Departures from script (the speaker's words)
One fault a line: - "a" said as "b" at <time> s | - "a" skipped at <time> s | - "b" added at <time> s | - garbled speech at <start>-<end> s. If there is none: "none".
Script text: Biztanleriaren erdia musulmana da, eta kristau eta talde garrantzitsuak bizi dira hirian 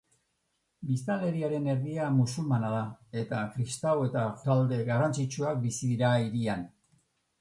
none